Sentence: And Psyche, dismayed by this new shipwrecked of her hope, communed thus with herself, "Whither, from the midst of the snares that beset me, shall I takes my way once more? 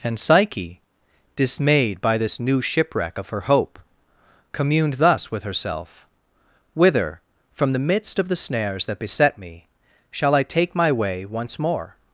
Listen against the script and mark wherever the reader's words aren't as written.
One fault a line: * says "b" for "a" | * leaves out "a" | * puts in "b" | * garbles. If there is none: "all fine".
* says "shipwreck" for "shipwrecked"
* says "take" for "takes"